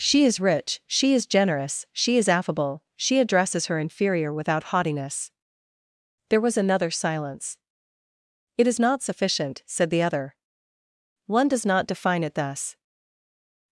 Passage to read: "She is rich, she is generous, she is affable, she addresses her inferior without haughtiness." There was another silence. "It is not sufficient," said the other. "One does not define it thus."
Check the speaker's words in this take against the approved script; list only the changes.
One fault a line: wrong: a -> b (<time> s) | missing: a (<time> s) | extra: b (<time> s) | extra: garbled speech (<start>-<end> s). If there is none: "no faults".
no faults